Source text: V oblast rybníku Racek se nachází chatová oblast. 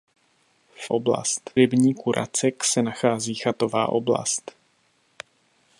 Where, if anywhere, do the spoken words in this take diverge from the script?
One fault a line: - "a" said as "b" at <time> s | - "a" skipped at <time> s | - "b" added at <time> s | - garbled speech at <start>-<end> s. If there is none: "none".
none